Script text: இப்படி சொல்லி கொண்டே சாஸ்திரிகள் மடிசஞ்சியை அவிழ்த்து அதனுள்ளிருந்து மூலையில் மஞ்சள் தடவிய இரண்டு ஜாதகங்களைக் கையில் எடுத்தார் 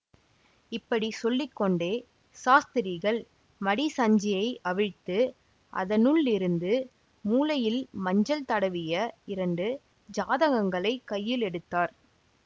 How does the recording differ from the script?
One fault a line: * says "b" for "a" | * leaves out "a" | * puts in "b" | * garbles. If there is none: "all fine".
all fine